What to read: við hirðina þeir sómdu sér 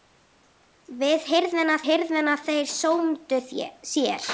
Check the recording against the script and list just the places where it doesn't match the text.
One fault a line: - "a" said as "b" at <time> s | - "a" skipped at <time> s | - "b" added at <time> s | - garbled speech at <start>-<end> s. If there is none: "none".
- "hirðina" added at 1.9 s